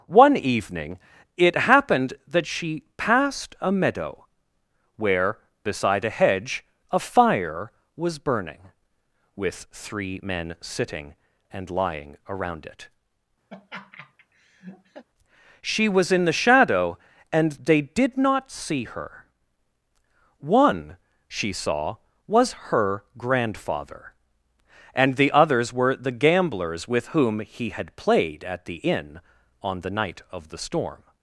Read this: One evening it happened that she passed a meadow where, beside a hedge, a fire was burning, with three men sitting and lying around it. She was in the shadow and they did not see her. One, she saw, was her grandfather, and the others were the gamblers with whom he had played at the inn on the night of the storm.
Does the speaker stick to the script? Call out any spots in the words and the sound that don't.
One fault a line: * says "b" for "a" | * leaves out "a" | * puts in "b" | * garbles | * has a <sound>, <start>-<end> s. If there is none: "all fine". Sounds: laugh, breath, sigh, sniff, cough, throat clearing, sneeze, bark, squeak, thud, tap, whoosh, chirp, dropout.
* has a laugh, 13.5-15.0 s